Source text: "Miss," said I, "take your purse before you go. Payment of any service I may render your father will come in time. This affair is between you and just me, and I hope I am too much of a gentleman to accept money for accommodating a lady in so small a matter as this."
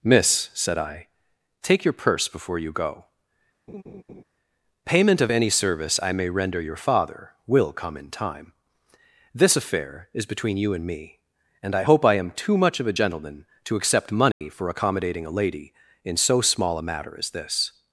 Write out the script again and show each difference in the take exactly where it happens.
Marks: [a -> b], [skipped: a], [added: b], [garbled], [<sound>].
"Miss," said I, "take your purse before you go. [laugh] Payment of any service I may render your father will come in time. This affair is between you and [skipped: just] me, and I hope I am too much of a gentleman to accept money [dropout] for accommodating a lady in so small a matter as this."